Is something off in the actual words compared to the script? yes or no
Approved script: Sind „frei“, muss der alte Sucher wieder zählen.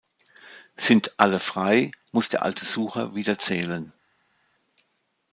yes